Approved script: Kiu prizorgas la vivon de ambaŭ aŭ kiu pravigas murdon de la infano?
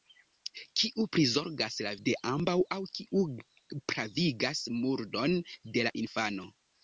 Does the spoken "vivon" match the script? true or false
false